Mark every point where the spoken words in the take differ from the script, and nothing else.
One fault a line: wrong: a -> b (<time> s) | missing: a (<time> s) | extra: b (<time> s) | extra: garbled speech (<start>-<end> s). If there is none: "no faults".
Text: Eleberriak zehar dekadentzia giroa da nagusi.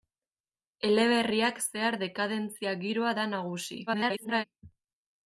extra: garbled speech (3.9-4.4 s)